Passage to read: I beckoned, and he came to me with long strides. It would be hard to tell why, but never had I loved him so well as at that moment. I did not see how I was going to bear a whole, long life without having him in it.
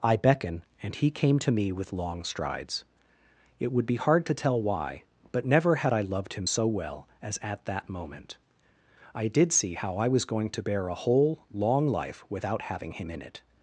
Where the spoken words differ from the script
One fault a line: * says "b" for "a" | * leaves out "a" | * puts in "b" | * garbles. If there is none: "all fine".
* says "beckon" for "beckoned"
* leaves out "not"